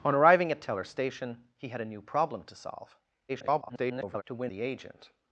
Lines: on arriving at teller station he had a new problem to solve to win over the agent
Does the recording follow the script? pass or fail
fail